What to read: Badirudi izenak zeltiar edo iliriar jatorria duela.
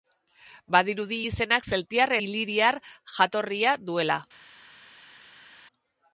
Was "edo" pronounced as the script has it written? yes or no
no